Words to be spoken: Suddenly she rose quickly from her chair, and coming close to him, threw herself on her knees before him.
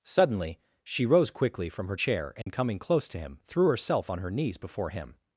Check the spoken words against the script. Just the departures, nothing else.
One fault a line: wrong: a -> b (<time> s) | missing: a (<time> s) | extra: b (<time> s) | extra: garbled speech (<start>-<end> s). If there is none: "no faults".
no faults